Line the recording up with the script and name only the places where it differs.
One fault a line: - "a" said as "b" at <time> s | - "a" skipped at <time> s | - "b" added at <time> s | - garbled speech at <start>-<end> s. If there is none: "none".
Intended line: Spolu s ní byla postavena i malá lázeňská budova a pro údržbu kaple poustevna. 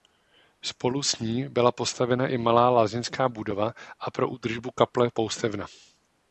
none